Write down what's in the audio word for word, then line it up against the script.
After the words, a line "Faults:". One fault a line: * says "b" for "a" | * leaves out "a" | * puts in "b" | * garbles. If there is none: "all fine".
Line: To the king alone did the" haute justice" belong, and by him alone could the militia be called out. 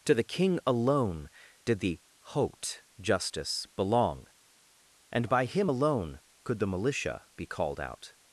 To the king alone did the" haute justice" belong, and by him alone could the militia be called out.
Faults:
all fine